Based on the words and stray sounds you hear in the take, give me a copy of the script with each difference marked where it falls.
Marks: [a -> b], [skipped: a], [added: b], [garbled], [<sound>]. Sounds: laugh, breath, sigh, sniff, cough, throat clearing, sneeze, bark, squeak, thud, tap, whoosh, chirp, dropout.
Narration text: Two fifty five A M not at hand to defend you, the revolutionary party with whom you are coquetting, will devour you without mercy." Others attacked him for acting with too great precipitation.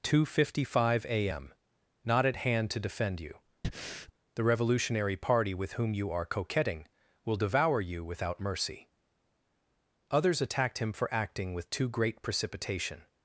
Two fifty five A M not at hand to defend you, [breath] the revolutionary party with whom you are coquetting, will devour you without mercy." Others attacked him for acting with too great precipitation.